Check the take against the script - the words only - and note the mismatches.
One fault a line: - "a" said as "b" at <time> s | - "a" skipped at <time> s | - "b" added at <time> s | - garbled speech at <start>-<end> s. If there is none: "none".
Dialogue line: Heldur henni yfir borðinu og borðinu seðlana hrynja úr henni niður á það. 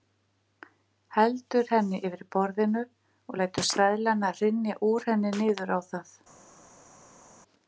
- "borðinu" said as "lætur" at 3.4 s